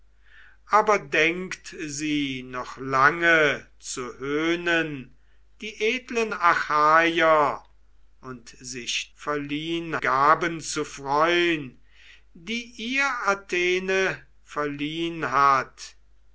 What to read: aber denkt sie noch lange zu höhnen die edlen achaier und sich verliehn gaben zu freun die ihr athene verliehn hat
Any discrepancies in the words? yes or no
no